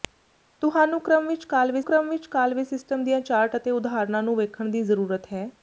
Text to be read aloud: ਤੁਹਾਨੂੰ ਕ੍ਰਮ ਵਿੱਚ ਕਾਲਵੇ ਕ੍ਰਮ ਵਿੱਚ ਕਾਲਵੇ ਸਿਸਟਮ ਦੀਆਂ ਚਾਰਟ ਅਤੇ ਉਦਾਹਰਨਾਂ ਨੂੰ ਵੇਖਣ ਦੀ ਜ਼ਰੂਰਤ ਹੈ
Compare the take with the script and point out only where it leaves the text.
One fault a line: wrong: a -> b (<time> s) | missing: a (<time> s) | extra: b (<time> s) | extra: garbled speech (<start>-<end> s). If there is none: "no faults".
no faults